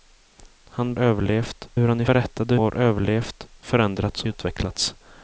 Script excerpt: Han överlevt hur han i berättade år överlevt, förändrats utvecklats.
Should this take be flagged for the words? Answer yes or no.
no